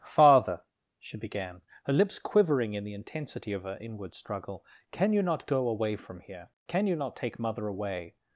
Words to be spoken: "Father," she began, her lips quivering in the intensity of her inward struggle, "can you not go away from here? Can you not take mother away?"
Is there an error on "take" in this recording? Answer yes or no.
no